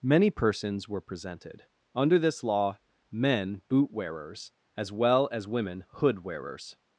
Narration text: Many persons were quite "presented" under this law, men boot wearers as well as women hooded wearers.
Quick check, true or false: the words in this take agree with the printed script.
false